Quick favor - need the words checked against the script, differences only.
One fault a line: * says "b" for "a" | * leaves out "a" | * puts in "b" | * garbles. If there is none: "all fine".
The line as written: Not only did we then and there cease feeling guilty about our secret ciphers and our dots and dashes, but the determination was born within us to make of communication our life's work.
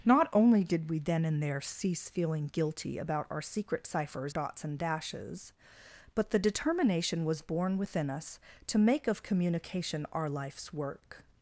* leaves out "and our"